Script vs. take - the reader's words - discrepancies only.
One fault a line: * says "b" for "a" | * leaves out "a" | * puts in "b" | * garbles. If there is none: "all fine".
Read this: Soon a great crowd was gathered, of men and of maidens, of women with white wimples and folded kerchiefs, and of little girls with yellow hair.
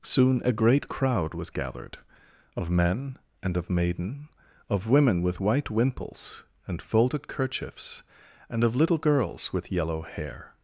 * says "maiden" for "maidens"